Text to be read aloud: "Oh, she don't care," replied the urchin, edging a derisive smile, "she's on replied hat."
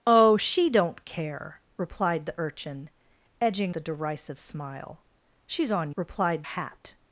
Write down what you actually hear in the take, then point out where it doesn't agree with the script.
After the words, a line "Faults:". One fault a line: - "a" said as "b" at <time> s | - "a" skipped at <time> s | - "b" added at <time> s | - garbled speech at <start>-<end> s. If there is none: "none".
"Oh, she don't care," replied the urchin, edging a derisive smile, "she's on replied hat."
Faults:
none